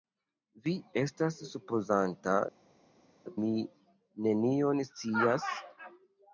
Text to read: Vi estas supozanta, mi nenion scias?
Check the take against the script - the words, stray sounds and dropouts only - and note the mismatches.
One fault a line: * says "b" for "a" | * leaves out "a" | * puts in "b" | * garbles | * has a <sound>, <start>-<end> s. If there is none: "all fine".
all fine